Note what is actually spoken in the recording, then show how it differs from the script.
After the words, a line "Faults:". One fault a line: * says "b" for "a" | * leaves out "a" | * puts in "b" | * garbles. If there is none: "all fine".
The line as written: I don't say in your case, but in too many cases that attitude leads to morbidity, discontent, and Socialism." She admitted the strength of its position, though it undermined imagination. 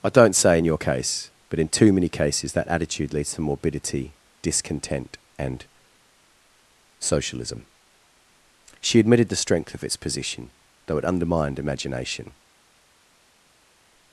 I don't say in your case, but in too many cases that attitude leads to morbidity, discontent, and Socialism." She admitted the strength of its position, though it undermined imagination.
Faults:
all fine